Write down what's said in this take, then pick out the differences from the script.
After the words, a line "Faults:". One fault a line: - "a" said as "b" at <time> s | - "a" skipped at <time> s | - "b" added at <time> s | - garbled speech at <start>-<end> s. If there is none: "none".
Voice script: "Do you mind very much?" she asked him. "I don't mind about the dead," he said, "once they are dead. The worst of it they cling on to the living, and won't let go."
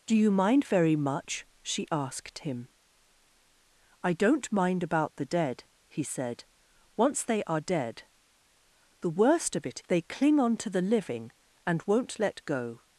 "Do you mind very much?" she asked him. "I don't mind about the dead," he said, "once they are dead. The worst of it they cling on to the living, and won't let go."
Faults:
none